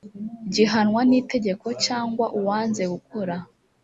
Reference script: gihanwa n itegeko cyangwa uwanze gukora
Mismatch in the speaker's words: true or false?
false